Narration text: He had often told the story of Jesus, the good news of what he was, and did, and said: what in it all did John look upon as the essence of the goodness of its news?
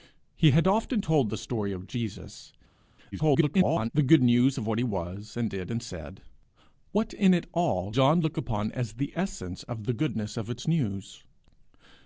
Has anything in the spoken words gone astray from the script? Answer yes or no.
yes